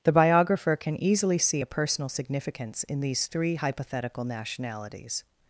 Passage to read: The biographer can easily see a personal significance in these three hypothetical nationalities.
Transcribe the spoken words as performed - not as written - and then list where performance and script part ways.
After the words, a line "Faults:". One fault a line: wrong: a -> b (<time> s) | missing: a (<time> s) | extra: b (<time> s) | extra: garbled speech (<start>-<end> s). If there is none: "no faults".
The biographer can easily see a personal significance in these three hypothetical nationalities.
Faults:
no faults